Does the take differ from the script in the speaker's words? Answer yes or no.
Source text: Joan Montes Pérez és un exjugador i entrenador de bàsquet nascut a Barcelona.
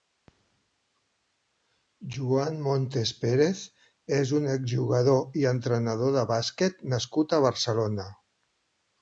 no